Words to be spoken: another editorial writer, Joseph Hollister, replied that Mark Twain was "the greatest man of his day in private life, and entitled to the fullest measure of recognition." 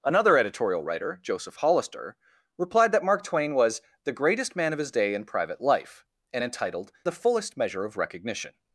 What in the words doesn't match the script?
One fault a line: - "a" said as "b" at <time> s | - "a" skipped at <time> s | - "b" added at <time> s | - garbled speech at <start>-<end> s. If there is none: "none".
- "to" skipped at 6.9 s